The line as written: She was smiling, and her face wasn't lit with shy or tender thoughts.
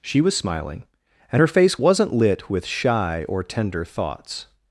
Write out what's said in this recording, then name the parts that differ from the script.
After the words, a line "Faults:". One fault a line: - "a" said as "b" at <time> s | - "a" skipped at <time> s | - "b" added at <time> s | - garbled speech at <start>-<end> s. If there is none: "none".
She was smiling, and her face wasn't lit with shy or tender thoughts.
Faults:
none